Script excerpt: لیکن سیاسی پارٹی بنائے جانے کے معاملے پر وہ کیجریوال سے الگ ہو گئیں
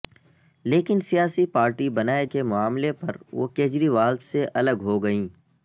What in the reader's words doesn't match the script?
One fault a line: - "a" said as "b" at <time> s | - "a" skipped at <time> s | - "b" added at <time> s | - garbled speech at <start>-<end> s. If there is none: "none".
- "جانے" skipped at 2.2 s